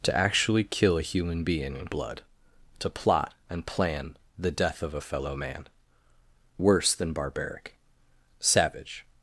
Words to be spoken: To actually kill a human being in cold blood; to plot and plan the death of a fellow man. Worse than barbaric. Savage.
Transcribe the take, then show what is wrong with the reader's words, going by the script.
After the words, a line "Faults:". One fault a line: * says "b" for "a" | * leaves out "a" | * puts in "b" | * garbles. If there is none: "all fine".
To actually kill a human being in blood; to plot and plan the death of a fellow man. Worse than barbaric. Savage.
Faults:
* leaves out "cold"